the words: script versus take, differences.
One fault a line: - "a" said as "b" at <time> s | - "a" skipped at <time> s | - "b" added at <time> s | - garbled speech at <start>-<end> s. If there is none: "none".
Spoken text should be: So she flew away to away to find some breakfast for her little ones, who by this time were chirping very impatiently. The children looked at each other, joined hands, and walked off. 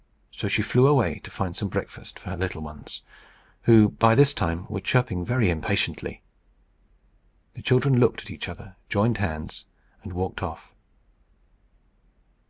- "away to" skipped at 1.3 s